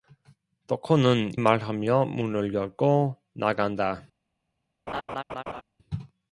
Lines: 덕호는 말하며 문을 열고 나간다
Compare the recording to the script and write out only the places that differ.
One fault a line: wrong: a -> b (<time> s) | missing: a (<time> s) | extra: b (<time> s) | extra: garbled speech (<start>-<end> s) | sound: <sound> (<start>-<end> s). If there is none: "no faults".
sound: laugh (4.9-5.6 s)